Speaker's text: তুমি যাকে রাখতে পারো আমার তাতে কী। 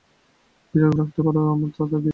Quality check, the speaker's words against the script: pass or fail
pass